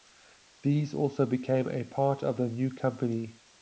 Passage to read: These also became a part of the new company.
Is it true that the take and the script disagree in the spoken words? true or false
false